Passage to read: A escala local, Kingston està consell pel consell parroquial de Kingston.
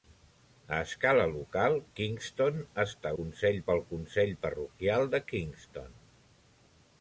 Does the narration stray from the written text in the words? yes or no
no